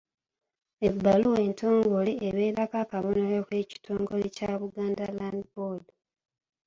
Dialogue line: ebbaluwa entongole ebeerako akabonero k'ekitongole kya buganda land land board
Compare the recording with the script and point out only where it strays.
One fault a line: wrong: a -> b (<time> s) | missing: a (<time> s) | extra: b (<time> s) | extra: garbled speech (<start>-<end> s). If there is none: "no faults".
missing: land (5.4 s)